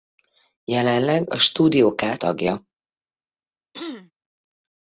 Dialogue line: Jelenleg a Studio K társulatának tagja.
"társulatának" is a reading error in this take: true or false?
true